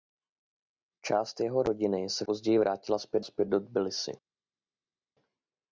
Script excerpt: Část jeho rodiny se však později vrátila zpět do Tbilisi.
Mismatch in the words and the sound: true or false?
true